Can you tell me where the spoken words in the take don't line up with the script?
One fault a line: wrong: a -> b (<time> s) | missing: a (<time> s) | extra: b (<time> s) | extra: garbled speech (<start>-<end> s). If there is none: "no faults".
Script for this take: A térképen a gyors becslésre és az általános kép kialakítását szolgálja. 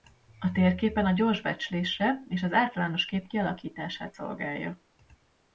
no faults